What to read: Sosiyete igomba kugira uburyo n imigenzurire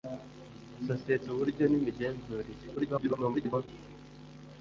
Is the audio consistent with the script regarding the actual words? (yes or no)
no